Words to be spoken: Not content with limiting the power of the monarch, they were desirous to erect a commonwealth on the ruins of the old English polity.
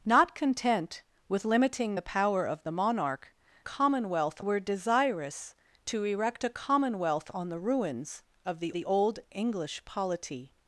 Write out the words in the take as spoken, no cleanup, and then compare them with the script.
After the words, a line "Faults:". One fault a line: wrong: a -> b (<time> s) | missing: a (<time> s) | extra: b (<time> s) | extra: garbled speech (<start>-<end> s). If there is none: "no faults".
Not content with limiting the power of the monarch, commonwealth were desirous to erect a commonwealth on the ruins of the the old English polity.
Faults:
wrong: they -> commonwealth (3.6 s)
extra: the (8.7 s)